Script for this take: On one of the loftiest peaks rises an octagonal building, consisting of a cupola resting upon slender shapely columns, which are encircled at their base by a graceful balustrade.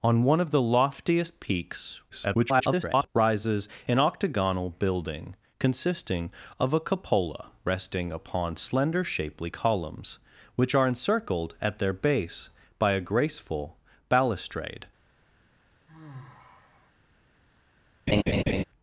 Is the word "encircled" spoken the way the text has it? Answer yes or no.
yes